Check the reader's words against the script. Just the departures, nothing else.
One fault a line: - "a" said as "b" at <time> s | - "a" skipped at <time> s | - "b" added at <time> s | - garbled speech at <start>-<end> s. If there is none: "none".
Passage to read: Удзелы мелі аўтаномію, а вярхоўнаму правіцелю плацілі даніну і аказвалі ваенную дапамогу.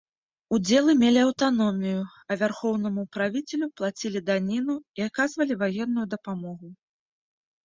none